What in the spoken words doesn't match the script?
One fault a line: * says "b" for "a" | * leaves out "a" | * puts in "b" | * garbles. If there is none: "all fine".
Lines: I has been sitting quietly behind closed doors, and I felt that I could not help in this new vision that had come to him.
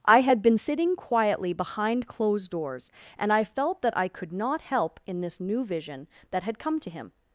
* says "had" for "has"